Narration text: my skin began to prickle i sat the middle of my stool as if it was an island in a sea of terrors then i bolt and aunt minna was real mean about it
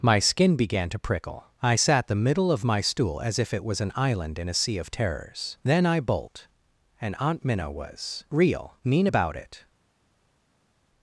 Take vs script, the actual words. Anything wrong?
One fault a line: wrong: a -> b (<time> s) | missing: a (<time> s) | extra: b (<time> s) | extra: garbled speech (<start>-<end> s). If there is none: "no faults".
no faults